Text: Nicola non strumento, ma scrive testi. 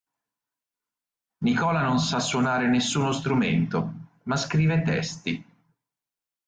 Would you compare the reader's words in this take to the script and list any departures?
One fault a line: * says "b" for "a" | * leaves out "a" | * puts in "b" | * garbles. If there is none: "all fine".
* puts in "sa suonare nessuno"